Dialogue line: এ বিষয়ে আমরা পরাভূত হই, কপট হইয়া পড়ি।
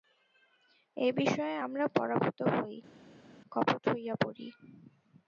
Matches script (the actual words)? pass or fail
pass